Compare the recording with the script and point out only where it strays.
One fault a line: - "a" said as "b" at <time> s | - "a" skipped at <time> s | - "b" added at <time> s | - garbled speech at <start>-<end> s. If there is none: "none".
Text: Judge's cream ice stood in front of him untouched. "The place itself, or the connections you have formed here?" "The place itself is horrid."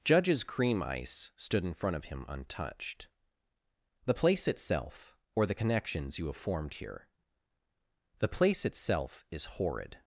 none